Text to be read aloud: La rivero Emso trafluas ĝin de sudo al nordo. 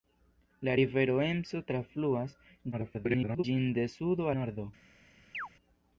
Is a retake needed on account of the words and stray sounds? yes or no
yes